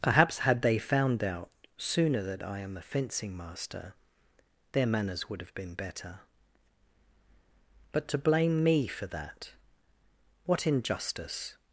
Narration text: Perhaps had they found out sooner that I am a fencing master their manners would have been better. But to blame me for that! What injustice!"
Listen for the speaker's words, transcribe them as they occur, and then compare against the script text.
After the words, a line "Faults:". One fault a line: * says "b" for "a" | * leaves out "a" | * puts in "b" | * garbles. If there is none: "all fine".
Perhaps had they found out sooner that I am a fencing master their manners would have been better. But to blame me for that! What injustice!"
Faults:
all fine